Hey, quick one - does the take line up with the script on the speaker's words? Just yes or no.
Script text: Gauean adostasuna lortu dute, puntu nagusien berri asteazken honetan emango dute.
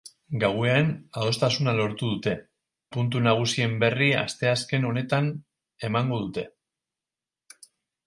yes